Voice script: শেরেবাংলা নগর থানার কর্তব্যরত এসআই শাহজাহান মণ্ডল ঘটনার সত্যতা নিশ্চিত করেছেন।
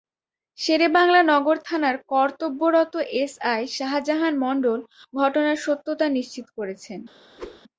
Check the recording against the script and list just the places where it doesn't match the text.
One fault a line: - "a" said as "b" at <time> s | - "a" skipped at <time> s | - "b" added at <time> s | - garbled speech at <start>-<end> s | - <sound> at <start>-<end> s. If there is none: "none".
- whoosh at 7.4-7.6 s